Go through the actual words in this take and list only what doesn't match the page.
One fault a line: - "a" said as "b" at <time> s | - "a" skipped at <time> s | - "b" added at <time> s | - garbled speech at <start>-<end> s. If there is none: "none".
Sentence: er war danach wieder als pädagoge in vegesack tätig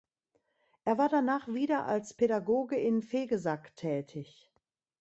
none